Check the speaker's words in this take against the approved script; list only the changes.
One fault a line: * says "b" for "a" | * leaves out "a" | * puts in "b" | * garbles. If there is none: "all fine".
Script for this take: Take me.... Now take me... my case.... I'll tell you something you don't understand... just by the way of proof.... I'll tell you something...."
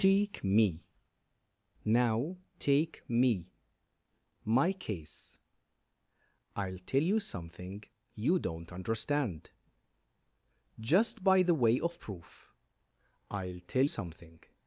* leaves out "you"